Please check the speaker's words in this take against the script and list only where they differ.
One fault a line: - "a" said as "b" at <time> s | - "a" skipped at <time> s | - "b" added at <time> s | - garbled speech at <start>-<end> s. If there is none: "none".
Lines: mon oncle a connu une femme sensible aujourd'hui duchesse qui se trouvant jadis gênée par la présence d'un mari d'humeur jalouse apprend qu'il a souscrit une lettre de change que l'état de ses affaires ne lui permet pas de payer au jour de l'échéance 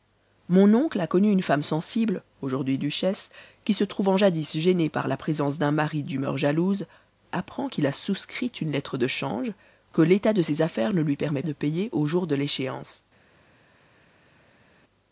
- "pas" skipped at 11.4 s